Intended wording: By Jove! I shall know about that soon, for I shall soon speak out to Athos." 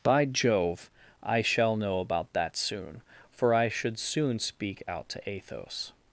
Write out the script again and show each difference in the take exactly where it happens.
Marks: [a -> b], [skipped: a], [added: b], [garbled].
By Jove! I shall know about that soon, for I [shall -> should] soon speak out to Athos."